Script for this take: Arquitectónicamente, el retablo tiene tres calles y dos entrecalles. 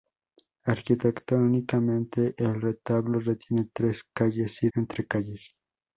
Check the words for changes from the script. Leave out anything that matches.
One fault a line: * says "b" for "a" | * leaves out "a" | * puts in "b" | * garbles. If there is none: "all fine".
* leaves out "dos"